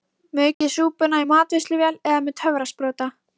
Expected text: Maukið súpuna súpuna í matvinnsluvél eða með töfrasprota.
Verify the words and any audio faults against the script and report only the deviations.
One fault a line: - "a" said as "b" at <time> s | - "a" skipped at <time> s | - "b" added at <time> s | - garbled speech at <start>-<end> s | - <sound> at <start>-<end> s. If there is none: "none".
- dropout at 0.5-0.6 s
- "súpuna" skipped at 1.2 s